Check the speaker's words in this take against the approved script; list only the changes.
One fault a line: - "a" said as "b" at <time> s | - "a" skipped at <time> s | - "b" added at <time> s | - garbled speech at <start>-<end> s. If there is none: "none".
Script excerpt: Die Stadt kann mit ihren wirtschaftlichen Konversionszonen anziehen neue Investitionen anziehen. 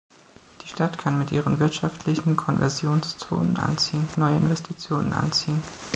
none